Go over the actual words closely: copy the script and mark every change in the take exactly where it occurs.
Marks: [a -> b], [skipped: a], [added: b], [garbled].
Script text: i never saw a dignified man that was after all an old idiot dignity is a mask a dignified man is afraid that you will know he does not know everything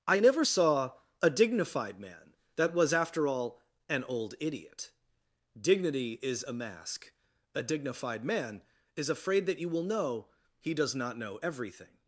i never saw a dignified man that was after all an old idiot dignity is a mask a dignified man is afraid that you will know he does not know everything